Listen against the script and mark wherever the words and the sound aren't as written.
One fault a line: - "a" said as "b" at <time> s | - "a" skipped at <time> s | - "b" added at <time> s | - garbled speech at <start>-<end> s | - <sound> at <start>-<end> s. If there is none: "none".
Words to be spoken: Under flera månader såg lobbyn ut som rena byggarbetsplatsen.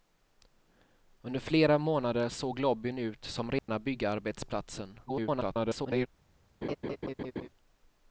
- dropout at 3.6-3.7 s
- garbled speech at 5.1-6.1 s
- laugh at 6.6-7.5 s